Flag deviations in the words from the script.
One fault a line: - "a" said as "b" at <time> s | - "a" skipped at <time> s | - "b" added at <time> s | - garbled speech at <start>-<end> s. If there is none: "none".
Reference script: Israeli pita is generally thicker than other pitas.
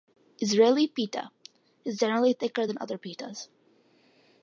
none